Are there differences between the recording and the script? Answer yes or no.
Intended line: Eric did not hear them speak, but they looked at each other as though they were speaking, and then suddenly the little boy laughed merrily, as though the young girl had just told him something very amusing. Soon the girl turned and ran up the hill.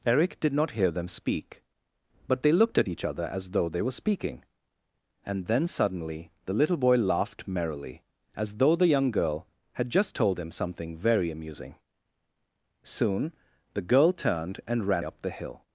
no